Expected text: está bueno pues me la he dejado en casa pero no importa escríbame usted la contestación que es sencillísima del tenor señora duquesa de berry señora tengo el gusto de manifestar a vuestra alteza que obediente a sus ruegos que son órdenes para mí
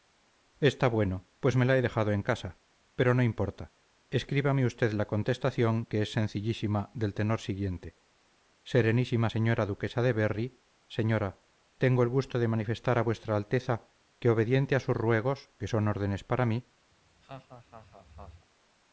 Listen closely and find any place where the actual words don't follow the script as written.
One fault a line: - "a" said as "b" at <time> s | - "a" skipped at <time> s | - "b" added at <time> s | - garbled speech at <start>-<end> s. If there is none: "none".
- "siguiente serenísima" added at 7.4 s